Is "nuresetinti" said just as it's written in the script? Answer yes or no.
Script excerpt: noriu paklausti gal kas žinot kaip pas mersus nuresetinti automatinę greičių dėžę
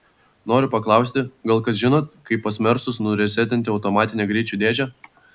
yes